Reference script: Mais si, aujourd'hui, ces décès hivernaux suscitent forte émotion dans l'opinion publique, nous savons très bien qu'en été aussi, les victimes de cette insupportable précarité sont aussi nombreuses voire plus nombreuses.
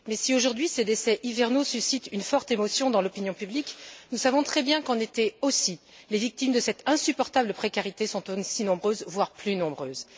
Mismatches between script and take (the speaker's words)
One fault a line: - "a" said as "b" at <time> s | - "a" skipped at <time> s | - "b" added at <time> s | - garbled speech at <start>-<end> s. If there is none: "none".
- "une" added at 2.1 s